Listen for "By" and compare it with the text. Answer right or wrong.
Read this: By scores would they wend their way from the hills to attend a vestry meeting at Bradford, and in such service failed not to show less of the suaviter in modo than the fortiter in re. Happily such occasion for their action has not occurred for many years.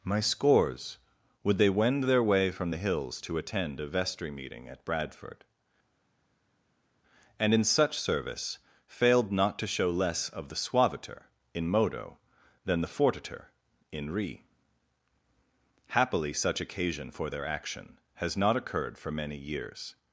wrong